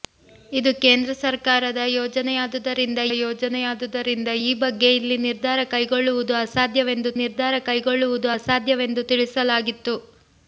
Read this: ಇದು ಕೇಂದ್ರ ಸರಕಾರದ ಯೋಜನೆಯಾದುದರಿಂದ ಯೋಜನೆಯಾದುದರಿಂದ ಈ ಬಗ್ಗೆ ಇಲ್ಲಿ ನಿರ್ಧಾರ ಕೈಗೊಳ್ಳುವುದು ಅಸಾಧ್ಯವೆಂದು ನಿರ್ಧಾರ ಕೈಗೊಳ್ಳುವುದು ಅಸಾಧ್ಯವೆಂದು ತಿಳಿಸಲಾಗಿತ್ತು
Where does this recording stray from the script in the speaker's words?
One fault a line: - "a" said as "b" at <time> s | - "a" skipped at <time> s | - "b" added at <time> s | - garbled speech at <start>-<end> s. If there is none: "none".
none